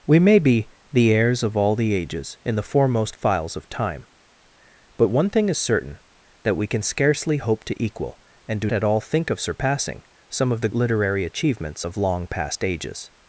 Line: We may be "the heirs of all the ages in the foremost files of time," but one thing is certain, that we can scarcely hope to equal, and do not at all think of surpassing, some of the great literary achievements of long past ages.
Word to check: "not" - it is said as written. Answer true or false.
false